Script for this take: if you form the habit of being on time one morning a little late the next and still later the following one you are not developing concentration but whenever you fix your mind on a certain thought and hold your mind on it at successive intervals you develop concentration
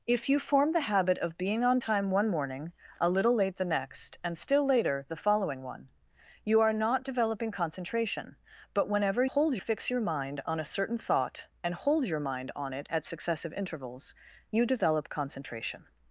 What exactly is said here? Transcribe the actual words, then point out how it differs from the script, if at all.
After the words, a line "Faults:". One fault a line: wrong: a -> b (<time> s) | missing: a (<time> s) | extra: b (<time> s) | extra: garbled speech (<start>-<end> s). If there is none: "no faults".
if you form the habit of being on time one morning a little late the next and still later the following one you are not developing concentration but whenever hold fix your mind on a certain thought and hold your mind on it at successive intervals you develop concentration
Faults:
wrong: you -> hold (9.2 s)